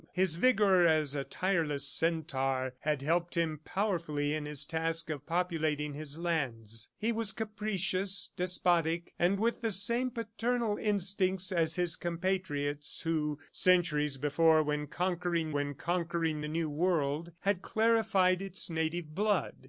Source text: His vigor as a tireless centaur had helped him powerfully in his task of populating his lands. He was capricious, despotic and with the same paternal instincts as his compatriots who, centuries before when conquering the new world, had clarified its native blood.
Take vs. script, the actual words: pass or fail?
fail